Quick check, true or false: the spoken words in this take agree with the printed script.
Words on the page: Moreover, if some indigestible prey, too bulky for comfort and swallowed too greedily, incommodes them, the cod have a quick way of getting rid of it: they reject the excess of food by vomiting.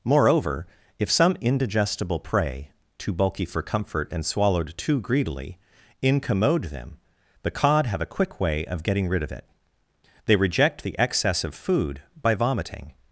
false